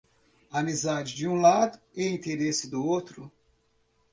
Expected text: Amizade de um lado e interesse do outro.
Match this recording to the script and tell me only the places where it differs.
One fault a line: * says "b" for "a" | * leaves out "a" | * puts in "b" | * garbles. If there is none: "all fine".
all fine